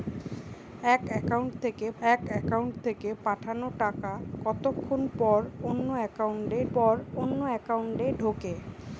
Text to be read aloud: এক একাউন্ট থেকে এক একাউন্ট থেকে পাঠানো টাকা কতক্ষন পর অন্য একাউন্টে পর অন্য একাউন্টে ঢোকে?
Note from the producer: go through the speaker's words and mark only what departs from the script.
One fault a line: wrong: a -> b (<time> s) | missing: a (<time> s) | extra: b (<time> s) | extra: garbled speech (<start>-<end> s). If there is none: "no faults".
no faults